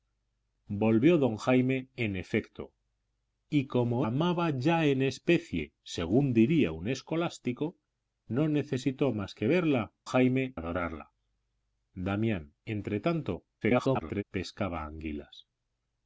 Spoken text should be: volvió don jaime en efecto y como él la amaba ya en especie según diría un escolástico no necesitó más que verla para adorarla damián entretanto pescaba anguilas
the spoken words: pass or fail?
fail